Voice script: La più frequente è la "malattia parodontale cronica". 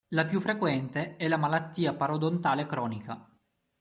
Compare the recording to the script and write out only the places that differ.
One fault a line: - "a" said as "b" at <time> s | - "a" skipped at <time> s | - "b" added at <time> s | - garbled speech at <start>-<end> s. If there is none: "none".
none